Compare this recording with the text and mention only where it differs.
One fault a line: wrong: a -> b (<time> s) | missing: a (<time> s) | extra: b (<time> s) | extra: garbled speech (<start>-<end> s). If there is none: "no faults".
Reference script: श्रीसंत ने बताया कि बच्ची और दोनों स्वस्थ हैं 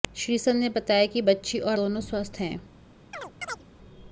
no faults